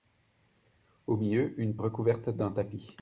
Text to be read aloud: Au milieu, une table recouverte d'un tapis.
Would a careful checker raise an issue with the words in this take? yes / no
yes